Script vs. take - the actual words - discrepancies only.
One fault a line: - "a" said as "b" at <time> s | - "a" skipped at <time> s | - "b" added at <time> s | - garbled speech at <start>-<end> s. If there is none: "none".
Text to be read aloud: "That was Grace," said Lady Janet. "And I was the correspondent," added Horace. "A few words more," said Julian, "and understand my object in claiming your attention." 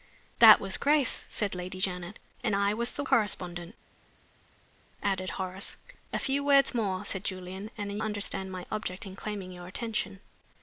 none